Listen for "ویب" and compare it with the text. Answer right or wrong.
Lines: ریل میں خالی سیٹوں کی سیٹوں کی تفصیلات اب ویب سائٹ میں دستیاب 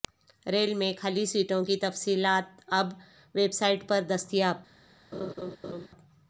right